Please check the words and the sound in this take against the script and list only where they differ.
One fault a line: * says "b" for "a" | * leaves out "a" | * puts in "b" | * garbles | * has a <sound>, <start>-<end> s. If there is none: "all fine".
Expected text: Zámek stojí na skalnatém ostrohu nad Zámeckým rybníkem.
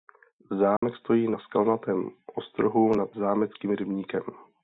* has a dropout, 0.8-0.8 s